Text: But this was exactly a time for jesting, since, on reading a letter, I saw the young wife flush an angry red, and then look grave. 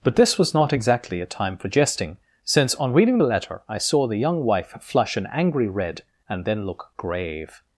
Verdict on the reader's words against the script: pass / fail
fail